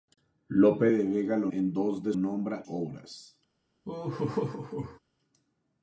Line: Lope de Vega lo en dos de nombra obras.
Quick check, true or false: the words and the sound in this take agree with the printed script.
false